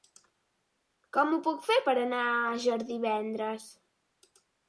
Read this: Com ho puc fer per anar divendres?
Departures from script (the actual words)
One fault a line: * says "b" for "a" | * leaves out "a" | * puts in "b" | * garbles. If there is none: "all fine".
* puts in "a Àger"